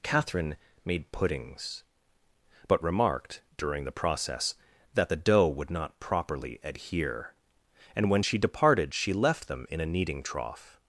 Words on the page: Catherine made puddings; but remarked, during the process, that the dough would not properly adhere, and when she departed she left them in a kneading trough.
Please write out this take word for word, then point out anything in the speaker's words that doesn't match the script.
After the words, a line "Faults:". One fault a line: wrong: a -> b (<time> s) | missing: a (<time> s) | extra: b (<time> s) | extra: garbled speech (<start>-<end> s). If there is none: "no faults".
Catherine made puddings; but remarked, during the process, that the dough would not properly adhere, and when she departed she left them in a kneading trough.
Faults:
no faults